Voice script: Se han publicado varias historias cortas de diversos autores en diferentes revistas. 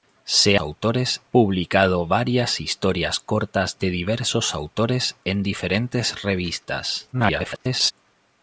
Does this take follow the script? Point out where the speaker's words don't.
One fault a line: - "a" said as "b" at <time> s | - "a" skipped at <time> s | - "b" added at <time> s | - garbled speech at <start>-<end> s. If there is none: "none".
- "han" said as "autores" at 0.6 s
- garbled speech at 7.1-7.9 s